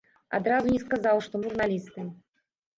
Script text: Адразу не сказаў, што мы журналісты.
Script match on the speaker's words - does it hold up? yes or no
no